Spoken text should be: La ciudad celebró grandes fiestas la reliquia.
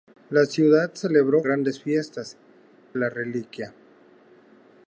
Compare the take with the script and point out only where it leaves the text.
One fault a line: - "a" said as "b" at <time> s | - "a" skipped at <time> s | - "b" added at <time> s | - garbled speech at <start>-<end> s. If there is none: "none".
none